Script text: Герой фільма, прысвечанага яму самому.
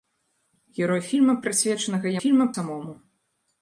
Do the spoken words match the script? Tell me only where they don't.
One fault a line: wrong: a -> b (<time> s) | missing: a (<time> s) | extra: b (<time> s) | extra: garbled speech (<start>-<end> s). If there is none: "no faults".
wrong: яму -> фільма (2.2 s)